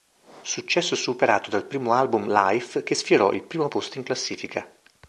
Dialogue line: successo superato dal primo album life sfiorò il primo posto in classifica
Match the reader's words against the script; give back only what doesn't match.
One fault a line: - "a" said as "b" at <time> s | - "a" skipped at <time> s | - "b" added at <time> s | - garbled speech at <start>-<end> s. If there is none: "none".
- "che" added at 2.8 s